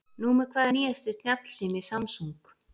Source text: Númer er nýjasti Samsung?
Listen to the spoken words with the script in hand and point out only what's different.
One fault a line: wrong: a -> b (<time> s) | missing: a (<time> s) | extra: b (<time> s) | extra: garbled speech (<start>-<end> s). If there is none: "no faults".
extra: hvað (0.6 s)
extra: snjallsími (1.1 s)